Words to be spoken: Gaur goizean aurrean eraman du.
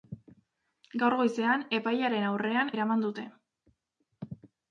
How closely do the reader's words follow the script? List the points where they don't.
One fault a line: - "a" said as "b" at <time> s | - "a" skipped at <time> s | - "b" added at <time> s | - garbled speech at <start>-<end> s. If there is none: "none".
- "epailearen" added at 1.8 s
- "du" said as "dute" at 3.1 s